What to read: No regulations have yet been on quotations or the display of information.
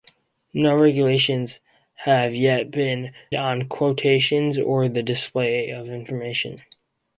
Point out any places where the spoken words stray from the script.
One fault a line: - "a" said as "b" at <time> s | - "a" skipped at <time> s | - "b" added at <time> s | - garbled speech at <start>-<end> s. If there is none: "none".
none